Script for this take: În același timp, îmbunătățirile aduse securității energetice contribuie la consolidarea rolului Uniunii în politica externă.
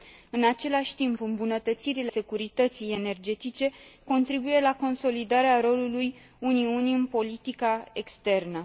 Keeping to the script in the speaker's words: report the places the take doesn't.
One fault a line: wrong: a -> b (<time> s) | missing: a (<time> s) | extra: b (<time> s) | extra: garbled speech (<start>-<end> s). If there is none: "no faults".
missing: aduse (2.1 s)